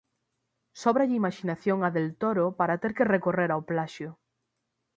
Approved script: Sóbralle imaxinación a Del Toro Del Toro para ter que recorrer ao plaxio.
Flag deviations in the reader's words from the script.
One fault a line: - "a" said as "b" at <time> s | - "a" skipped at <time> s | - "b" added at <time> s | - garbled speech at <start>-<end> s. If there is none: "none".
- "Del Toro" skipped at 2.5 s